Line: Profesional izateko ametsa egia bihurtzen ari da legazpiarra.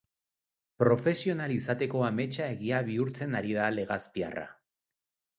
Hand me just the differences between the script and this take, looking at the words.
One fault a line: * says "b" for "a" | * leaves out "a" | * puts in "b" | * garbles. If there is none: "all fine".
all fine